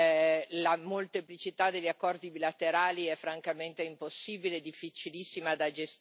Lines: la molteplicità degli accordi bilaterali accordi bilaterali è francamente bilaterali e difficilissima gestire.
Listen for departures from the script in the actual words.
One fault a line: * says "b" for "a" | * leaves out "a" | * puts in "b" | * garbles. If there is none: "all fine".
* leaves out "accordi bilaterali"
* says "impossibile" for "bilaterali"
* puts in "da"